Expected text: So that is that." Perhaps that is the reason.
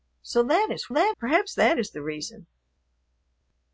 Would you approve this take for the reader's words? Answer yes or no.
yes